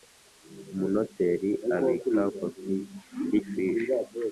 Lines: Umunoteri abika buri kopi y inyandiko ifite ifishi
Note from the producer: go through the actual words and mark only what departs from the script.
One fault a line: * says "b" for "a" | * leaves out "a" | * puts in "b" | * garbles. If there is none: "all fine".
* leaves out "buri"
* leaves out "inyandiko ifite"